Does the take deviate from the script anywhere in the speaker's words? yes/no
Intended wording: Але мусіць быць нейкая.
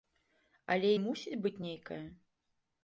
no